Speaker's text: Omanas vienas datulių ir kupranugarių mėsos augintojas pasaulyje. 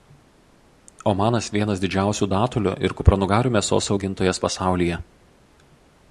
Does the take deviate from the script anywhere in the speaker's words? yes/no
yes